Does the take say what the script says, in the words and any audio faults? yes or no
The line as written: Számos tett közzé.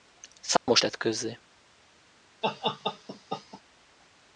no